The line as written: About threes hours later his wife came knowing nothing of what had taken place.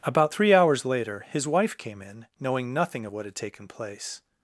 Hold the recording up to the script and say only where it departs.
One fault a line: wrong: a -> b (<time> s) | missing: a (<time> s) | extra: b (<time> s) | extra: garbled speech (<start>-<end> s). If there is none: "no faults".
wrong: threes -> three (0.3 s)
extra: in (2.0 s)